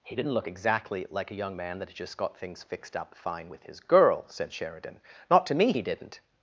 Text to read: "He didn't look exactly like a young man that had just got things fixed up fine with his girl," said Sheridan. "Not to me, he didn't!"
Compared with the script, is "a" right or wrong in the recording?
right